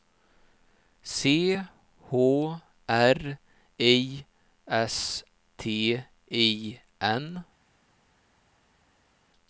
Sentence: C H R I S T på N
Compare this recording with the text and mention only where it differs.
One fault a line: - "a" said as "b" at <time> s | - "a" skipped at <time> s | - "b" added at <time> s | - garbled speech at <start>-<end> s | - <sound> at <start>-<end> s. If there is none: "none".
- "på" said as "I" at 6.3 s